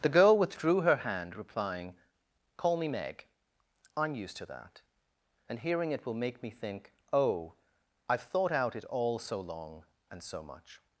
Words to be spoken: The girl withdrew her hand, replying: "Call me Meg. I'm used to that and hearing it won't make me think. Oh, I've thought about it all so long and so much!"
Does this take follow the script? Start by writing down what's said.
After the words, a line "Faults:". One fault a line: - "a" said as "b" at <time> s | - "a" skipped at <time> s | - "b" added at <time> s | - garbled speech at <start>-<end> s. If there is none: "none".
The girl withdrew her hand, replying: "Call me Meg. I'm used to that and hearing it will make me think. Oh, I've thought out it all so long and so much!"
Faults:
- "won't" said as "will" at 6.0 s
- "about" said as "out" at 8.5 s